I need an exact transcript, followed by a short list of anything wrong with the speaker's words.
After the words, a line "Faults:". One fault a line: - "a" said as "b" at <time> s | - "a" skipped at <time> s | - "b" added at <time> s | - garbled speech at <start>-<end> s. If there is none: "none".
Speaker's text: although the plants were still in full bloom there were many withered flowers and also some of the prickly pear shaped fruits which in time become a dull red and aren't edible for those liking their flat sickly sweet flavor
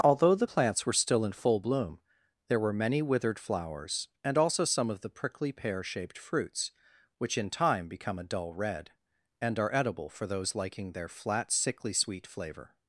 although the plants were still in full bloom there were many withered flowers and also some of the prickly pear shaped fruits which in time become a dull red and are edible for those liking their flat sickly sweet flavor
Faults:
- "aren't" said as "are" at 9.6 s